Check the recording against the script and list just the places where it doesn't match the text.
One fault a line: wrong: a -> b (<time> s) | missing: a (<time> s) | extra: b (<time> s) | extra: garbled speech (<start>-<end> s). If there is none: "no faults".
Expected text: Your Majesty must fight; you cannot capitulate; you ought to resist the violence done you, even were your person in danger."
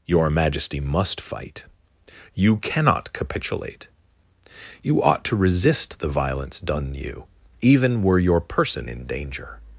no faults